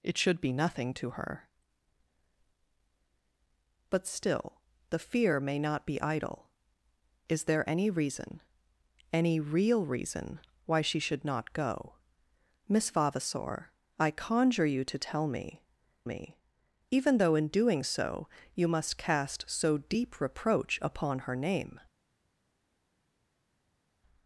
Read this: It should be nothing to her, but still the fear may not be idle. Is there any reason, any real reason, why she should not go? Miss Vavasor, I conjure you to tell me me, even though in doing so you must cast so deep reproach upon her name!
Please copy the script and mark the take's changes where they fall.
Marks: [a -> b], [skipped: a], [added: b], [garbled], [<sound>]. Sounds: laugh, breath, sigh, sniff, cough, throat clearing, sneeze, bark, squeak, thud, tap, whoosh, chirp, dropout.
It should be nothing to her, but still the fear may not be idle. Is there any reason, any real reason, why she should not go? Miss Vavasor, I conjure you to tell me me, even though in doing so you must cast so deep reproach upon her name!